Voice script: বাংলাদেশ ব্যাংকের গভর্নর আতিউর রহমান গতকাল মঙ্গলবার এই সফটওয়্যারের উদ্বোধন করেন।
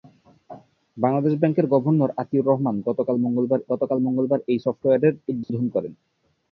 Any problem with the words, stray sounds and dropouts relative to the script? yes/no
yes